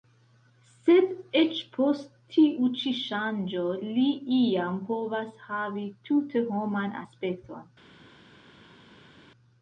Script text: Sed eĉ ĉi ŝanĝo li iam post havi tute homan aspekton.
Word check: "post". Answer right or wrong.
wrong